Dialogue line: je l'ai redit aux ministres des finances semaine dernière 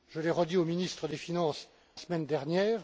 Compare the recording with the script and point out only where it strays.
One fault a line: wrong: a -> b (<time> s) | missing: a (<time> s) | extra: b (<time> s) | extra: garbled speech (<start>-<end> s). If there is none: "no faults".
no faults